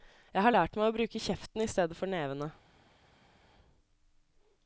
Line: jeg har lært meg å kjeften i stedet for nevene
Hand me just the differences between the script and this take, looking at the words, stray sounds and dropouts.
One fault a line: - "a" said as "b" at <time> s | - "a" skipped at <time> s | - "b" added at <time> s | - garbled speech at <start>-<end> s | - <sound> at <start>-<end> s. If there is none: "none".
- "bruke" added at 0.9 s